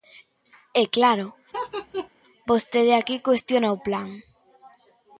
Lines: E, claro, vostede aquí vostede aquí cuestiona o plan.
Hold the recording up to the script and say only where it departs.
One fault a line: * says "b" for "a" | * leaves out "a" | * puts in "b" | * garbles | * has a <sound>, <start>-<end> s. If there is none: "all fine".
* has a laugh, 1.5-2.1 s
* leaves out "vostede aquí"